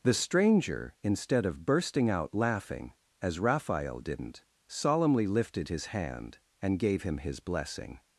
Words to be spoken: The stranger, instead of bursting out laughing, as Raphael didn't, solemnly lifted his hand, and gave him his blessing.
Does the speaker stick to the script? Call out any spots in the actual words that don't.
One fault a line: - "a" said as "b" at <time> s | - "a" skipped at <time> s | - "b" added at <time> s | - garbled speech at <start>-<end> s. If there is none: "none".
none